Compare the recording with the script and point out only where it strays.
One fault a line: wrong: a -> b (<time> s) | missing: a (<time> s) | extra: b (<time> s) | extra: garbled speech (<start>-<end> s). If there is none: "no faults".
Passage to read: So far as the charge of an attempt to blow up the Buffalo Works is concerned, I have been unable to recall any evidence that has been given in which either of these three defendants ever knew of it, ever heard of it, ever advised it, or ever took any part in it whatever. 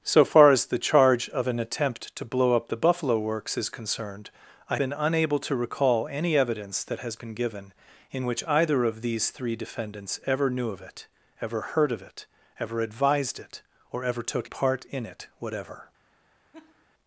missing: have (4.8 s)
missing: any (14.5 s)